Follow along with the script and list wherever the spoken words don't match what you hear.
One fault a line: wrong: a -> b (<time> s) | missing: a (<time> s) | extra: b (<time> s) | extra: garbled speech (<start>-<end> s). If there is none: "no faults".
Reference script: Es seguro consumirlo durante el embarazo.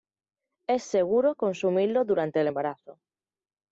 no faults